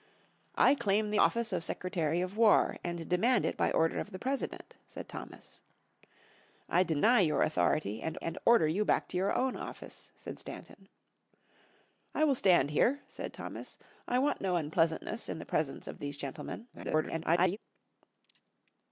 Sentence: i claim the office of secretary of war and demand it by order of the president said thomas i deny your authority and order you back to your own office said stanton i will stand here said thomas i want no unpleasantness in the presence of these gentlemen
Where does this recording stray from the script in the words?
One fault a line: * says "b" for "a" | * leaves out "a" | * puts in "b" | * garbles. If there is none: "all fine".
* puts in "and"
* garbles